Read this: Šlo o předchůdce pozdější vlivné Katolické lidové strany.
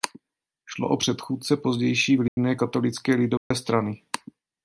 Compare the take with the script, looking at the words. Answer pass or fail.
pass